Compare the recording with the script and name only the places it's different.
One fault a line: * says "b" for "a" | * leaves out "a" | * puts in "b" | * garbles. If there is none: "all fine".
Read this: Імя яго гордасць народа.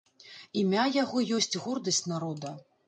* puts in "ёсць"